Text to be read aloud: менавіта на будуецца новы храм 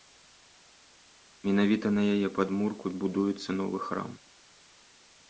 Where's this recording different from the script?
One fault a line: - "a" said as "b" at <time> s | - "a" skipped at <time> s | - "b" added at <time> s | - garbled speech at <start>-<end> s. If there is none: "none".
- "яе падмурку" added at 2.1 s